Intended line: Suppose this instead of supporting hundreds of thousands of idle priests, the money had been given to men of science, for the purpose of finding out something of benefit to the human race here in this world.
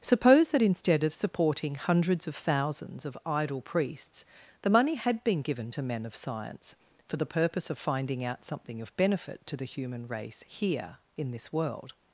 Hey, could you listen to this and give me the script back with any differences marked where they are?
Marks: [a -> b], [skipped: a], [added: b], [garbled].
Suppose [this -> that] instead of supporting hundreds of thousands of idle priests, the money had been given to men of science, for the purpose of finding out something of benefit to the human race here in this world.